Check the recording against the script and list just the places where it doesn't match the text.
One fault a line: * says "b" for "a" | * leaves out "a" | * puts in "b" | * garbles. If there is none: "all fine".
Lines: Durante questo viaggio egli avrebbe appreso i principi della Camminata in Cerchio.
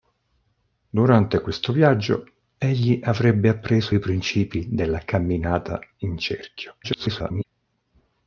* garbles